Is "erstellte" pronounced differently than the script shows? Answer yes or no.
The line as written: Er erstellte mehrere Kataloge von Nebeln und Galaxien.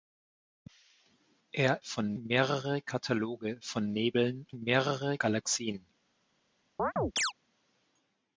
yes